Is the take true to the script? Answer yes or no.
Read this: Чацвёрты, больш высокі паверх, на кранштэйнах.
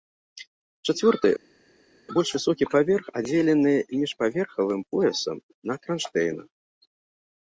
no